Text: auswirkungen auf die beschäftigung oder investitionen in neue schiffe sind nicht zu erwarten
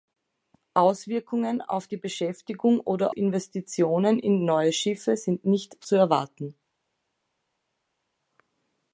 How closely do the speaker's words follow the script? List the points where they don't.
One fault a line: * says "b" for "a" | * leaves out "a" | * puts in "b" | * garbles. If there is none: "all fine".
all fine